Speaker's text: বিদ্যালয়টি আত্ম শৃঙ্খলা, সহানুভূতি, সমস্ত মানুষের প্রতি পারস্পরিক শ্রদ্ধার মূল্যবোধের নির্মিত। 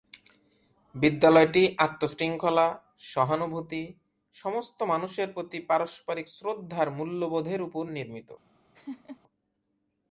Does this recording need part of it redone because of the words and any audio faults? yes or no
yes